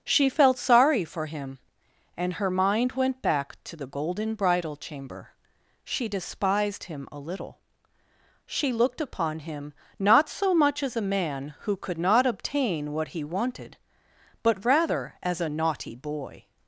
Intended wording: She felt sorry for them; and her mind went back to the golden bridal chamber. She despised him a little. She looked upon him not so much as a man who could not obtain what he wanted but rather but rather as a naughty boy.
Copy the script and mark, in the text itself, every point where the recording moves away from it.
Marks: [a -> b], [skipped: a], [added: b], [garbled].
She felt sorry for [them; -> him] and her mind went back to the golden bridal chamber. She despised him a little. She looked upon him not so much as a man who could not obtain what he wanted but rather [skipped: but rather] as a naughty boy.